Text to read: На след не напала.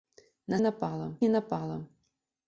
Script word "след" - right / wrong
wrong